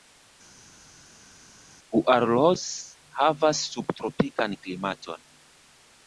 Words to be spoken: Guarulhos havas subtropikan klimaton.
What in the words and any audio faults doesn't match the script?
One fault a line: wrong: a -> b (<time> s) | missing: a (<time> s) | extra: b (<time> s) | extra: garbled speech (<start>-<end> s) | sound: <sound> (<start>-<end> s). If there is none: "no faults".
no faults